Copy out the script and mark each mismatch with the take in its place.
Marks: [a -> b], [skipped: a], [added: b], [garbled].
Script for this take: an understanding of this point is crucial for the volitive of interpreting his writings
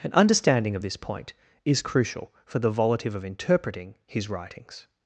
an understanding of this point is crucial for the volitive of interpreting his writings